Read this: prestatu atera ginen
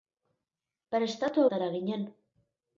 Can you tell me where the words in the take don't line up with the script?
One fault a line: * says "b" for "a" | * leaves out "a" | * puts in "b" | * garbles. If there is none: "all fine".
all fine